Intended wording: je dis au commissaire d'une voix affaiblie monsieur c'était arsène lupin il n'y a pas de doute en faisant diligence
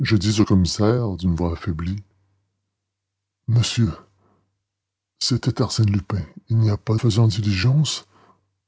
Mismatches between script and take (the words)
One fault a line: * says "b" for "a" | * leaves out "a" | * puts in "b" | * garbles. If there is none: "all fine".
* leaves out "de doute en"